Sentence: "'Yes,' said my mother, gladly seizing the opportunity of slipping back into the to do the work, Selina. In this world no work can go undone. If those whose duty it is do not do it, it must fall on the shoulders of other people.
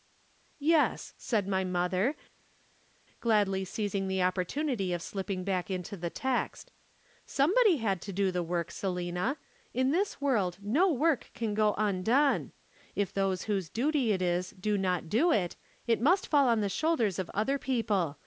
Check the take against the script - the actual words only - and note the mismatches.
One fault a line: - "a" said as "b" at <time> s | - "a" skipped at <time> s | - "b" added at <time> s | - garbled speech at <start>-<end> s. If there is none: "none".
- "text Somebody had" added at 6.1 s